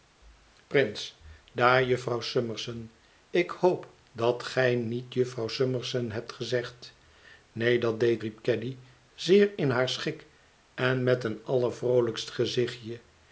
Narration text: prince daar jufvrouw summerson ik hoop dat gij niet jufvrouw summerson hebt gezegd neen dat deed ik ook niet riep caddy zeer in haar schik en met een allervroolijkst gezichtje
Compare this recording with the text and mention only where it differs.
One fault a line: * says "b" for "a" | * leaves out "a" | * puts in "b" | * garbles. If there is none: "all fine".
* leaves out "ik ook niet"